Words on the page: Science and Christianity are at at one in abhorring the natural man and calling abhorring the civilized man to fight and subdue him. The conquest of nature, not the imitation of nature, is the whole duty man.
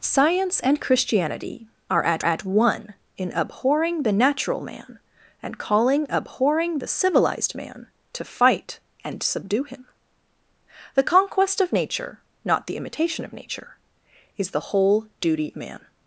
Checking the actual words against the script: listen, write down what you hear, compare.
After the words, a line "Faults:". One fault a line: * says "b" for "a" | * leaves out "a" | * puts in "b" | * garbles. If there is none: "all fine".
Science and Christianity are at at one in abhorring the natural man and calling abhorring the civilized man to fight and subdue him. The conquest of nature, not the imitation of nature, is the whole duty man.
Faults:
all fine